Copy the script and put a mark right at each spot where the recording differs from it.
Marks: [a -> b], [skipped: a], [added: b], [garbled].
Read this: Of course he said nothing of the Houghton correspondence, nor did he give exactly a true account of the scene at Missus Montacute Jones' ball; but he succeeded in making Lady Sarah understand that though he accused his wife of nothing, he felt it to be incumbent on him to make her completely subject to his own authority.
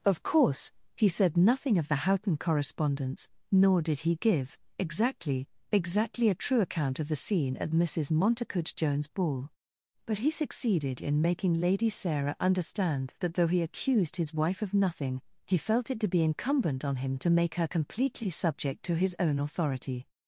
Of course he said nothing of the Houghton correspondence, nor did he give exactly [added: exactly] a true account of the scene at Missus Montacute Jones' ball; but he succeeded in making Lady Sarah understand that though he accused his wife of nothing, he felt it to be incumbent on him to make her completely subject to his own authority.